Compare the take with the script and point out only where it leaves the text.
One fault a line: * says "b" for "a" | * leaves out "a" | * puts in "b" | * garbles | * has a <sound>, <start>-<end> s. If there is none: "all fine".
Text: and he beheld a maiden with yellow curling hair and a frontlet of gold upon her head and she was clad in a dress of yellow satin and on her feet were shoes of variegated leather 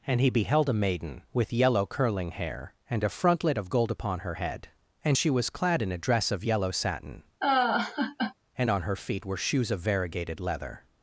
* has a laugh, 7.4-8.3 s